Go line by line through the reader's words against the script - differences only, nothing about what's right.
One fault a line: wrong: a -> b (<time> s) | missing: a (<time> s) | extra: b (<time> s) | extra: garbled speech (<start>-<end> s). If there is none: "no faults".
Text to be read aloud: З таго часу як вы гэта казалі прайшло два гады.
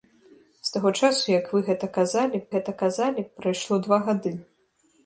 extra: гэта казалі (2.5 s)